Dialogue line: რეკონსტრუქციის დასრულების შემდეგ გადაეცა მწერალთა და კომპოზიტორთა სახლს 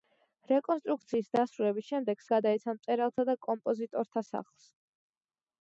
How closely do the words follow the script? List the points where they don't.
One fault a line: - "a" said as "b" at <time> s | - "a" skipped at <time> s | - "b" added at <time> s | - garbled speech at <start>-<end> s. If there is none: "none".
none